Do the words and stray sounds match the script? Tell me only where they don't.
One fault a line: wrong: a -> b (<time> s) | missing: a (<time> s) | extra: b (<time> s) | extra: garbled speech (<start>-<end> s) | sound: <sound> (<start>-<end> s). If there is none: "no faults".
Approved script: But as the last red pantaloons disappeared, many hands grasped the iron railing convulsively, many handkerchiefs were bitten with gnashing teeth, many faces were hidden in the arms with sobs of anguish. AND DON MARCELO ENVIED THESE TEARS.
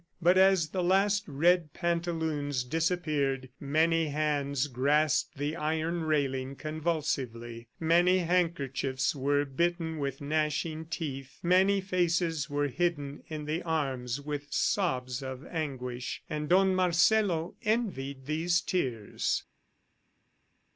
no faults